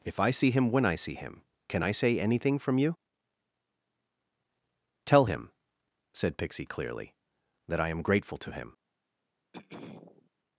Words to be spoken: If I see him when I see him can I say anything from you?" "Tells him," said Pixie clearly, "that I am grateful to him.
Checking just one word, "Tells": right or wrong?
wrong